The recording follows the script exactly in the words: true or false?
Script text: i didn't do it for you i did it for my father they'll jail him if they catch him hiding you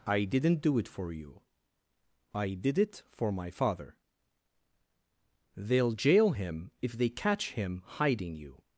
true